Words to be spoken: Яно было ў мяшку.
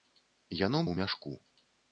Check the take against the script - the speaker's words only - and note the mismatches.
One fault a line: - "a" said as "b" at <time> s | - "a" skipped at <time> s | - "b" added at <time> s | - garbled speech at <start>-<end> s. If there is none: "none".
- "было" skipped at 0.8 s